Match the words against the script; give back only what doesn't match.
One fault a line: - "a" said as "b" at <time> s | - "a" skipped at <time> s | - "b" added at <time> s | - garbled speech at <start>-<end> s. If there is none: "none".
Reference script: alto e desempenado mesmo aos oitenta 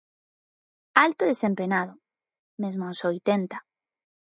none